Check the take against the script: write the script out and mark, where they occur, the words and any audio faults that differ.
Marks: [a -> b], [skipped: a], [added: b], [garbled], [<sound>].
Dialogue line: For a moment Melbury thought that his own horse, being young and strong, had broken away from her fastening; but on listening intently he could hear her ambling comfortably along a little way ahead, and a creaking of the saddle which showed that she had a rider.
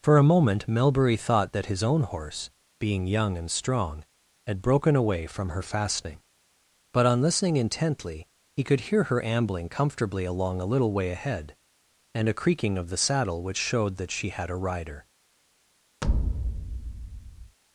For a moment Melbury thought that his own horse, being young and strong, had broken away from her fastening; but on listening intently he could hear her ambling comfortably along a little way ahead, and a creaking of the saddle which showed that she had a rider. [thud]